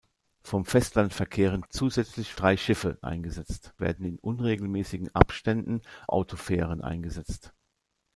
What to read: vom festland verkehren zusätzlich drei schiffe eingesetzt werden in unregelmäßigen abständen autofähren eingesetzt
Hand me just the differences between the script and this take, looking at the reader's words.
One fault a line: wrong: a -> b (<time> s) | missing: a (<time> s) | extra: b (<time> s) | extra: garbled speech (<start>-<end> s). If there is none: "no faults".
no faults